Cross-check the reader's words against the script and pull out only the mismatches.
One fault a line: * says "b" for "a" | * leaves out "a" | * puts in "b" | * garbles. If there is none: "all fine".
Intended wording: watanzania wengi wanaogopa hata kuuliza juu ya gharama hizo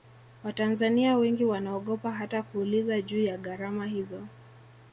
all fine